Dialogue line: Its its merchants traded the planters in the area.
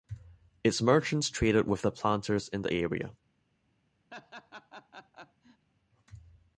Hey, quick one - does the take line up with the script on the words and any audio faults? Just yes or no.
no